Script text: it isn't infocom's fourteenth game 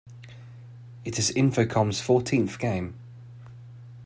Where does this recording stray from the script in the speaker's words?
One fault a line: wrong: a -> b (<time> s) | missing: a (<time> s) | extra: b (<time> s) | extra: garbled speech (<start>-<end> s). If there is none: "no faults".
wrong: isn't -> is (1.2 s)